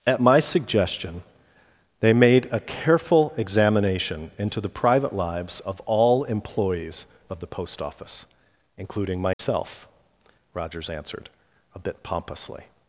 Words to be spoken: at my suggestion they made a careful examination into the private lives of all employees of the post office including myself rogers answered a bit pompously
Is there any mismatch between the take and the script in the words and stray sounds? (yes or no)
yes